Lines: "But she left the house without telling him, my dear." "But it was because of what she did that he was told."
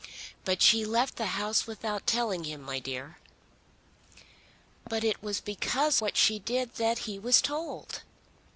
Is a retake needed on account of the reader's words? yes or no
yes